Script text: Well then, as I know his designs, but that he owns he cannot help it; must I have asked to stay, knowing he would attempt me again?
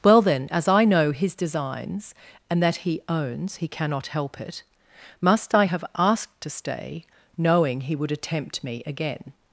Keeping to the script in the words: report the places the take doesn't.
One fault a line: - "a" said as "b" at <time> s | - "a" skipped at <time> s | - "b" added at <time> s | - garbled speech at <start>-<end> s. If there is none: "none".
- "but" said as "and" at 2.5 s